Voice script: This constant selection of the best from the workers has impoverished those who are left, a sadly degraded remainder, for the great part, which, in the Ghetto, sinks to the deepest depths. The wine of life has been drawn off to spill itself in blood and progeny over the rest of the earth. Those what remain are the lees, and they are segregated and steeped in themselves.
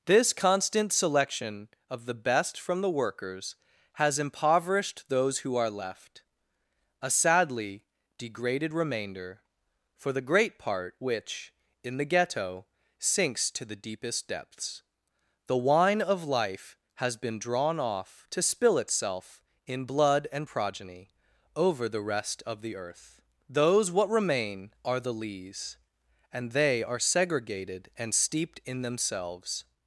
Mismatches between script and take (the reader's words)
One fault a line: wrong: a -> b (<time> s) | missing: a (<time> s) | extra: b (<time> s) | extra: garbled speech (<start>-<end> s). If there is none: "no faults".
no faults